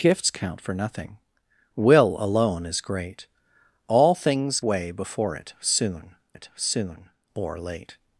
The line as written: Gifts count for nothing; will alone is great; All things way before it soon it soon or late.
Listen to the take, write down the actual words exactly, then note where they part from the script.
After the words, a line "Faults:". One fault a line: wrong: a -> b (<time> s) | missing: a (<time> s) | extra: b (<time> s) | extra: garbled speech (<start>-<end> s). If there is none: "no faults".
Gifts count for nothing; will alone is great; All things way before it soon it soon or late.
Faults:
no faults